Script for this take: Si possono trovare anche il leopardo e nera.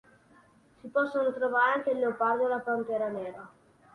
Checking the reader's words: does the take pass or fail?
fail